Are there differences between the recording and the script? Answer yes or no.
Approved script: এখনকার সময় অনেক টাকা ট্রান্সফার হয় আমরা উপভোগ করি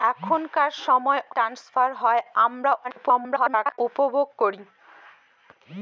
yes